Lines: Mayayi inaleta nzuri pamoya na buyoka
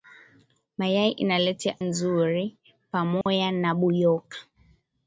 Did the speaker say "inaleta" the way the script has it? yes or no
yes